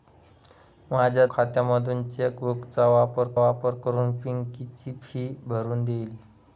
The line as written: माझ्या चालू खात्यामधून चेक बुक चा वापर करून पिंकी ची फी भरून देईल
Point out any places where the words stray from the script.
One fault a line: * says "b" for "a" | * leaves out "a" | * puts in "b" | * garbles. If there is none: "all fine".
* leaves out "चालू"
* puts in "वापर"